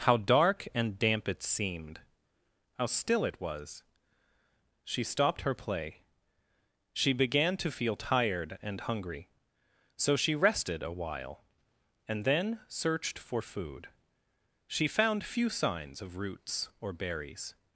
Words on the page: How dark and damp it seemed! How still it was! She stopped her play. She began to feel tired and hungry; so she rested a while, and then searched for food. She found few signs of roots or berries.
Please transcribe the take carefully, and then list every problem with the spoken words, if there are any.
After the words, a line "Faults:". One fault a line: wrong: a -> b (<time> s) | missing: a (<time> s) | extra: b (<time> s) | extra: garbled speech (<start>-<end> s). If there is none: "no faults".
How dark and damp it seemed! How still it was! She stopped her play. She began to feel tired and hungry; so she rested a while, and then searched for food. She found few signs of roots or berries.
Faults:
no faults